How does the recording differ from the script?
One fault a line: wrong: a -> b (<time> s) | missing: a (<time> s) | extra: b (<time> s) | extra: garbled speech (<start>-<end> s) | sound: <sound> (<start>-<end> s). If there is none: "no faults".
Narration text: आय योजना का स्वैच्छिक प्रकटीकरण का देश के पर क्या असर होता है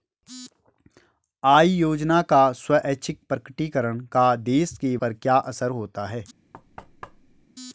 sound: thud (6.5-7.5 s)